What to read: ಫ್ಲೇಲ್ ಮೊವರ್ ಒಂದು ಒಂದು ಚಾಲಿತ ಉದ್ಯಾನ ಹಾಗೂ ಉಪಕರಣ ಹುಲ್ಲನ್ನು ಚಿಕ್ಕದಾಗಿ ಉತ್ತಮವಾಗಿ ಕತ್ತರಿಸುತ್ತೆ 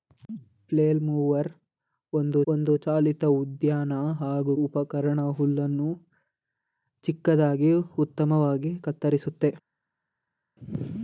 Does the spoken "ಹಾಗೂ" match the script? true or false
true